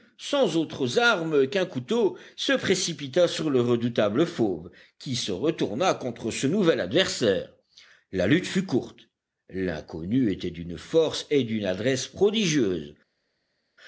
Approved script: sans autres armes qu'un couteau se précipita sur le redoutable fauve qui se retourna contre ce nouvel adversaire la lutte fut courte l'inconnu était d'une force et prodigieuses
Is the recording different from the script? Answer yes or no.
yes